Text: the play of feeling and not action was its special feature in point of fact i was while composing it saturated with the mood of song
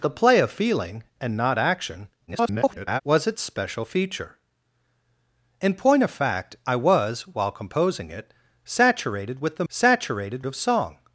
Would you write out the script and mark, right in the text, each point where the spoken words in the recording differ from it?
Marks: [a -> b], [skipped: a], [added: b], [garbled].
the play of feeling and not action [garbled] was its special feature in point of fact i was while composing it saturated with the [mood -> saturated] of song